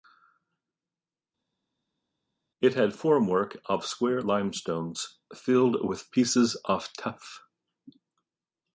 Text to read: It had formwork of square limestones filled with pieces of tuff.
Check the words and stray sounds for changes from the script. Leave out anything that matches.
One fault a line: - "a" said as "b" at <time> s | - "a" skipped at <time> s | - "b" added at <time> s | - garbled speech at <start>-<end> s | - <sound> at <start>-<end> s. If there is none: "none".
none